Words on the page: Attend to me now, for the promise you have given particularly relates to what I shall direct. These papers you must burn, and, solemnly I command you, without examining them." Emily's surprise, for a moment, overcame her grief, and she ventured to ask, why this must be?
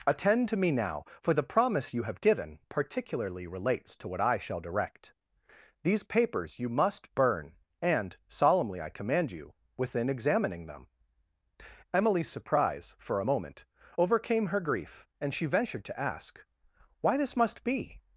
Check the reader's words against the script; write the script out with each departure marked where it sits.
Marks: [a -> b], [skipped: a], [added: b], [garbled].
Attend to me now, for the promise you have given particularly relates to what I shall direct. These papers you must burn, and, solemnly I command you, [without -> within] examining them." Emily's surprise, for a moment, overcame her grief, and she ventured to ask, why this must be?